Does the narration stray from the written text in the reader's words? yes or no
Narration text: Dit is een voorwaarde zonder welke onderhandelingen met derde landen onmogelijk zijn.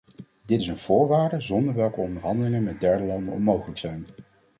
no